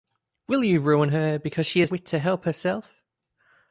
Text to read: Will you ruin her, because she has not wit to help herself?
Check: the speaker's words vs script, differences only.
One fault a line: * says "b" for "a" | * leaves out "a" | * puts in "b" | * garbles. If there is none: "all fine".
* leaves out "not"